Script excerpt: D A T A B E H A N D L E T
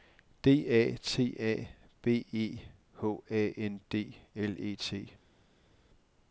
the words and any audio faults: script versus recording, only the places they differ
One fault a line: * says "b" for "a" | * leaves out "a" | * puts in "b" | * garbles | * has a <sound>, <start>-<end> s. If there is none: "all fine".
all fine